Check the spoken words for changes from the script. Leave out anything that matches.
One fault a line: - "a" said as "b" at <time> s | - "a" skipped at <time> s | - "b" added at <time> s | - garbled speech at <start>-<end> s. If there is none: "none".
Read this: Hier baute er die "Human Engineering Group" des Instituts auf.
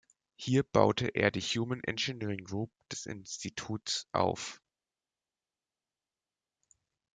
none